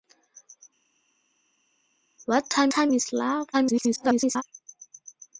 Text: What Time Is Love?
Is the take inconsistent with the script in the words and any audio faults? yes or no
yes